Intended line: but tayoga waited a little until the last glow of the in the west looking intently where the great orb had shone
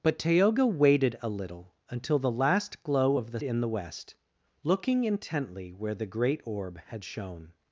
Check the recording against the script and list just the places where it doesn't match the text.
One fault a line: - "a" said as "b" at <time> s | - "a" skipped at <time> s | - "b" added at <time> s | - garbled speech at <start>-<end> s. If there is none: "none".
none